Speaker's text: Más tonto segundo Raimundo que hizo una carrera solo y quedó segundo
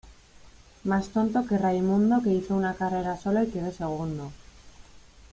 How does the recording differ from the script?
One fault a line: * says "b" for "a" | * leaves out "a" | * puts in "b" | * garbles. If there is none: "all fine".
* says "que" for "segundo"